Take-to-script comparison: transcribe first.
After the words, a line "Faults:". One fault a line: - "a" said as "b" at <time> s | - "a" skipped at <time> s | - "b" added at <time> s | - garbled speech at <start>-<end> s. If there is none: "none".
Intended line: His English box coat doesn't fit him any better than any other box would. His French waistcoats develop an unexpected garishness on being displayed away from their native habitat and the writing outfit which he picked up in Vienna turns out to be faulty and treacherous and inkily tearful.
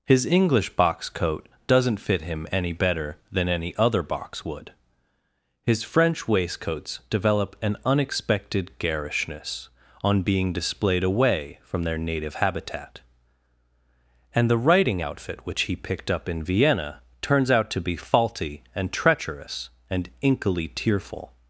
His English box coat doesn't fit him any better than any other box would. His French waistcoats develop an unexpected garishness on being displayed away from their native habitat and the writing outfit which he picked up in Vienna turns out to be faulty and treacherous and inkily tearful.
Faults:
none